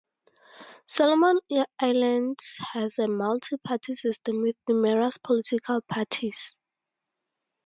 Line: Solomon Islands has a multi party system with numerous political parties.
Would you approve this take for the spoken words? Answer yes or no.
yes